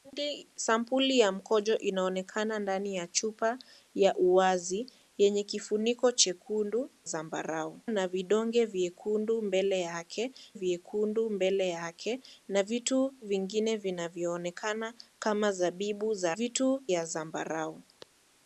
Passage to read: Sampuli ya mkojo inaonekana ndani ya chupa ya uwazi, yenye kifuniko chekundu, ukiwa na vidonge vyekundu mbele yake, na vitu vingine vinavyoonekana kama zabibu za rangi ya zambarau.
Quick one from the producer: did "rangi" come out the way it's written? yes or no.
no